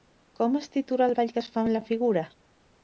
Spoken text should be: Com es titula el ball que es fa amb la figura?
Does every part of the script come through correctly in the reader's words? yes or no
yes